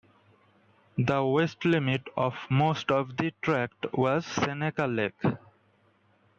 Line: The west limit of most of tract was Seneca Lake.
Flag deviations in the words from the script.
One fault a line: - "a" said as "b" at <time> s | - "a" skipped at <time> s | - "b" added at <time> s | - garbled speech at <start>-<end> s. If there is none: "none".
- "the" added at 3.2 s